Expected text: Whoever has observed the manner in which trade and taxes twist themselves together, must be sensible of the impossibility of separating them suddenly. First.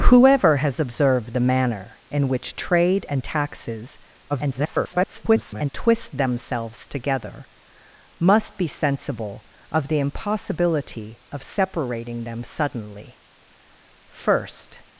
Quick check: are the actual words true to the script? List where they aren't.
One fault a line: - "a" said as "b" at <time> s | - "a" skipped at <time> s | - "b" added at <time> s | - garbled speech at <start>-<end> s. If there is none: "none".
- garbled speech at 4.3-5.7 s